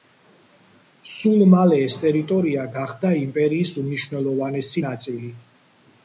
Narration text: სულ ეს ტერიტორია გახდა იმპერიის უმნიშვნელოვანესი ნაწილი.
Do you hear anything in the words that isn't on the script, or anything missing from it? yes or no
yes